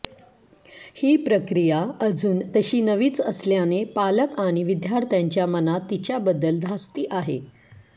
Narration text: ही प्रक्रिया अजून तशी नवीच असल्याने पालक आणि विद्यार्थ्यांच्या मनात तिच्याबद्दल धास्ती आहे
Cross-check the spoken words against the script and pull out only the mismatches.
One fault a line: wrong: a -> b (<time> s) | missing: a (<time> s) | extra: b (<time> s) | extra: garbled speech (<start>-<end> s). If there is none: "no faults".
no faults